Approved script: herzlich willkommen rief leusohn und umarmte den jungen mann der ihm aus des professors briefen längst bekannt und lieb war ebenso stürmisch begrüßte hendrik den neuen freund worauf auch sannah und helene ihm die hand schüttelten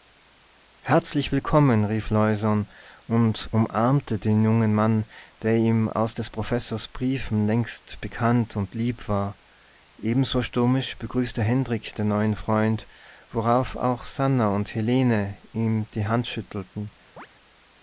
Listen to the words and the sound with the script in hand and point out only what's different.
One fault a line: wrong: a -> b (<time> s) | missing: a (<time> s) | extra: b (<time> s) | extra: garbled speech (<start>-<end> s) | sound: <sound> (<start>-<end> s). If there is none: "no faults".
sound: chirp (17.2-17.3 s)